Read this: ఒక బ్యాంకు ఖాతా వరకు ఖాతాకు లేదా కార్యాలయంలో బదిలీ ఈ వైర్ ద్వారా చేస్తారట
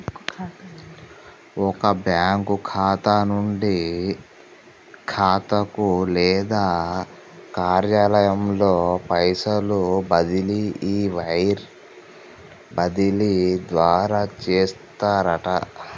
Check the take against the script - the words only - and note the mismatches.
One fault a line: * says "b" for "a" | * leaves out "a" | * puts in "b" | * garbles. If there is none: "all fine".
* says "నుండి" for "వరకు"
* puts in "పైసలు"
* puts in "బదిలీ"